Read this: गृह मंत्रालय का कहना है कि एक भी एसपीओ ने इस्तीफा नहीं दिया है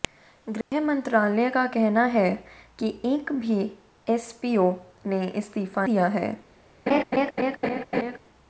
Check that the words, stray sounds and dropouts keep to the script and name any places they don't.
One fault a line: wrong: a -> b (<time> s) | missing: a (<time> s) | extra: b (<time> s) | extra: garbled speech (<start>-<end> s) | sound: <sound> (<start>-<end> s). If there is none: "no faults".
sound: dropout (0.6-0.7 s)
missing: नहीं (5.9 s)
sound: laugh (6.9-8.2 s)